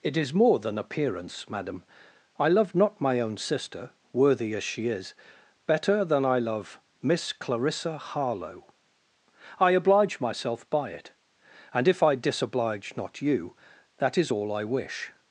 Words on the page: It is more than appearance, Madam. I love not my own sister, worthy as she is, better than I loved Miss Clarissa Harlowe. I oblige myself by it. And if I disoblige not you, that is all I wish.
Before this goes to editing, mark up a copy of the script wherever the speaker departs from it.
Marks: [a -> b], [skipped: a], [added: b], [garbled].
It is more than appearance, Madam. I love not my own sister, worthy as she is, better than I [loved -> love] Miss Clarissa Harlowe. I oblige myself by it. And if I disoblige not you, that is all I wish.